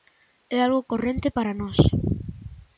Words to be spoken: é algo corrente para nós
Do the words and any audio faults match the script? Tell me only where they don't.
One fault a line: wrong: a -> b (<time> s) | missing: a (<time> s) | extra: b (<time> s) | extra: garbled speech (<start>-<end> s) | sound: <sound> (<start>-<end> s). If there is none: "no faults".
no faults